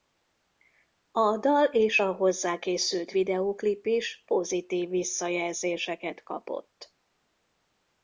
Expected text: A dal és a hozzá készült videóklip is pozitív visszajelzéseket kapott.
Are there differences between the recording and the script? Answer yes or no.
no